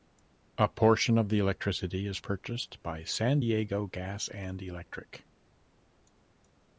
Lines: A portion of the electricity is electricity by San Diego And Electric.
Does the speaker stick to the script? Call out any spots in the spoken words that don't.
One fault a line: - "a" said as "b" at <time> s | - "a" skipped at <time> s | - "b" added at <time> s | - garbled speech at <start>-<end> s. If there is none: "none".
- "electricity" said as "purchased" at 2.2 s
- "Gas" added at 3.8 s